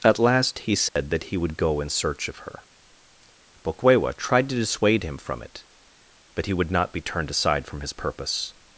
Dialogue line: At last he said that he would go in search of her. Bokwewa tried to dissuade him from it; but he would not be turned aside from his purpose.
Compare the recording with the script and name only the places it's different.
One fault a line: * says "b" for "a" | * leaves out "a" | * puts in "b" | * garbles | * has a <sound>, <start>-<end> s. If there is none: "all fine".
* has a dropout, 0.9-1.0 s